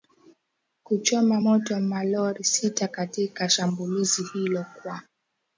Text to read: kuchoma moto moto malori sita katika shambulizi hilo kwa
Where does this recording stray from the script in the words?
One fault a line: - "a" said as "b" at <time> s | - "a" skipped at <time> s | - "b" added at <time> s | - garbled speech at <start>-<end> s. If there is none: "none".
- "moto" skipped at 1.8 s